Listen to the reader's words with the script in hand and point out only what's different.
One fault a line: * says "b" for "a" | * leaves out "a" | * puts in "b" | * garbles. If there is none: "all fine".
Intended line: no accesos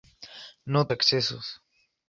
all fine